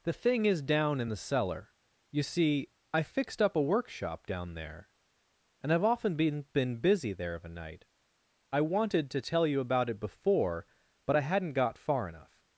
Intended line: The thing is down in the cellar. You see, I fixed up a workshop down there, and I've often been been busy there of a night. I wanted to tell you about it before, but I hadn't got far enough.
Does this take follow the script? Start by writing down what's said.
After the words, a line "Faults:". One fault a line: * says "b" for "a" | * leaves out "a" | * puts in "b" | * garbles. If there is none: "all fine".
The thing is down in the cellar. You see, I fixed up a workshop down there, and I've often been been busy there of a night. I wanted to tell you about it before, but I hadn't got far enough.
Faults:
all fine